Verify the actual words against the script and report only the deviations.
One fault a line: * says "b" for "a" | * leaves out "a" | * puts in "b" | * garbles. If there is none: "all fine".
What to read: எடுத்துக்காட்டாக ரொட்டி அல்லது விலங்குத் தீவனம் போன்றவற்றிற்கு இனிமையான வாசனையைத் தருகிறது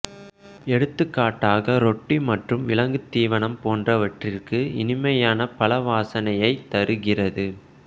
* says "மற்றும்" for "அல்லது"
* puts in "பழ"